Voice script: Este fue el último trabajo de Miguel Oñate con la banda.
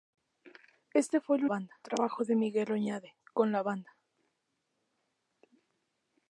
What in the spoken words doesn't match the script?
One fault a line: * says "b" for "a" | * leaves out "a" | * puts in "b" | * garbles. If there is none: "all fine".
* says "banda" for "último"